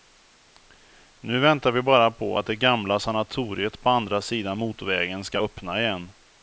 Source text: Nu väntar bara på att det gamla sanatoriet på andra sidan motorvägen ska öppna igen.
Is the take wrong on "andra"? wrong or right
right